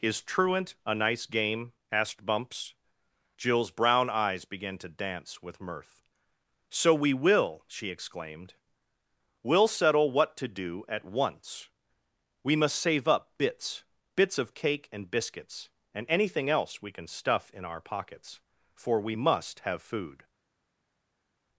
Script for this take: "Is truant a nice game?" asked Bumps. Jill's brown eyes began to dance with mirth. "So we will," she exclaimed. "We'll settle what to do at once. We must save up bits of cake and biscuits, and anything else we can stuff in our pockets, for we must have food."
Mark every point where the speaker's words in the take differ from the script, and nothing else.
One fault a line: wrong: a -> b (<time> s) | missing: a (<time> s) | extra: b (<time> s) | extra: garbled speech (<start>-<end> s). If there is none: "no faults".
extra: bits (14.2 s)